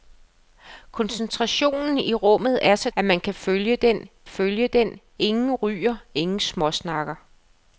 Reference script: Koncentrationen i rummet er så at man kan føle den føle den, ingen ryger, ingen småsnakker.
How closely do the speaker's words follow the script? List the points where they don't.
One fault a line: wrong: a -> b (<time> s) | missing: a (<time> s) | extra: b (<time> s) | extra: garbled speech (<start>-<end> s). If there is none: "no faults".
no faults